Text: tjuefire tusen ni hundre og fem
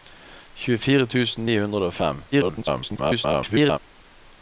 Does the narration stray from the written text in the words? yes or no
yes